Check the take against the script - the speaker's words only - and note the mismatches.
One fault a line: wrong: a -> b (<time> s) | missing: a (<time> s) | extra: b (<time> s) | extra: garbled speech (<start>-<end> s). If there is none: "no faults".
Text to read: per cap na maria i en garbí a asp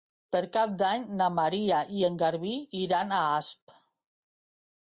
extra: d'any (0.8 s)
extra: iran (2.9 s)